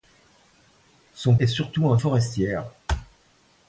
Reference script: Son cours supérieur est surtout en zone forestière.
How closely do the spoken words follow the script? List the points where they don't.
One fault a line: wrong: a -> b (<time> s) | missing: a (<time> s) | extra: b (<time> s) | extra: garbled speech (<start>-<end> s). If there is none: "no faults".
missing: cours supérieur (1.4 s)
missing: zone (2.0 s)